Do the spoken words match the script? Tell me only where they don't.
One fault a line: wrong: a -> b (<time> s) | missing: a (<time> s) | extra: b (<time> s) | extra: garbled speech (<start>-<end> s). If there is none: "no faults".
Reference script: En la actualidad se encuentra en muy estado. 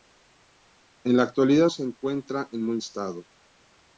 no faults